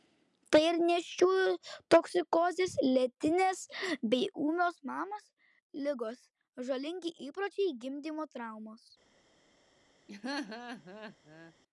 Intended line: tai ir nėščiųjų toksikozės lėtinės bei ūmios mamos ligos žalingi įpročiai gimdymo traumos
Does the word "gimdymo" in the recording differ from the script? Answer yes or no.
no